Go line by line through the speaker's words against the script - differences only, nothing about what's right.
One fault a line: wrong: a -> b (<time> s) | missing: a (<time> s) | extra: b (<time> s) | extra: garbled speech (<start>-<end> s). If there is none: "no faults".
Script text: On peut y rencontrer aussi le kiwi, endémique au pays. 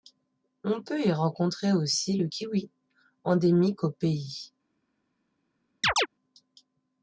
no faults